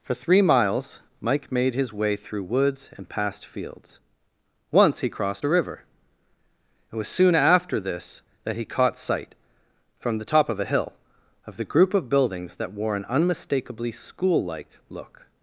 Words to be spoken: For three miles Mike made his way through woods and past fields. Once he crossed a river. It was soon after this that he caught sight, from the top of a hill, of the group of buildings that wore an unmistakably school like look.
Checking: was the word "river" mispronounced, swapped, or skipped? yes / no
no